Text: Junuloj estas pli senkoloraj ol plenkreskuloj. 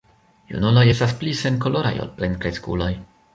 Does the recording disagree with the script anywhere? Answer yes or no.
no